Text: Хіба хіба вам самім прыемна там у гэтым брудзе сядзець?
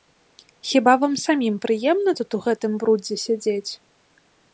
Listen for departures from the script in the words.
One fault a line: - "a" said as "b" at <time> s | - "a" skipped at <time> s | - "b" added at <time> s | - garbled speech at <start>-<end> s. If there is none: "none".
- "хіба" skipped at 0.9 s
- "там" said as "тут" at 2.2 s